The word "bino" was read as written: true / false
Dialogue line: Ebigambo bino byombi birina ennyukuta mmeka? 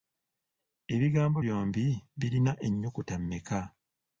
false